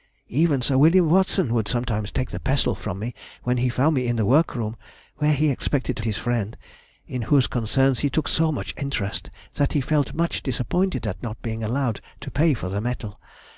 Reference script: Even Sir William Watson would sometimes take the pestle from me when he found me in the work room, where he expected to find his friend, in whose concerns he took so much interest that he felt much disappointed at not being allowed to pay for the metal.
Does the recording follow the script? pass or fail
fail